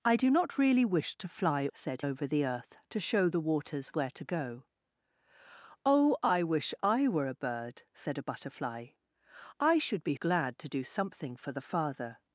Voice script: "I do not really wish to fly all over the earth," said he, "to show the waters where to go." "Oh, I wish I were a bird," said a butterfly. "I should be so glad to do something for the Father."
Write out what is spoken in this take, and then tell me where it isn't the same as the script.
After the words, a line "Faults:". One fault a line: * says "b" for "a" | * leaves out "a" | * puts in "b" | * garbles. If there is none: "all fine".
"I do not really wish to fly said over the earth," "to show the waters where to go." "Oh, I wish I were a bird," said a butterfly. "I should be glad to do something for the Father."
Faults:
* says "said" for "all"
* leaves out "said he"
* leaves out "so"